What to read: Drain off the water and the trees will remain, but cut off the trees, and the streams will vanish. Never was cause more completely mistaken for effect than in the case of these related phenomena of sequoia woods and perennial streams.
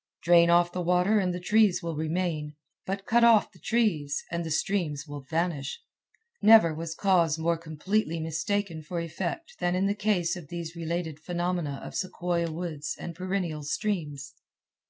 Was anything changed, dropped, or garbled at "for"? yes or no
no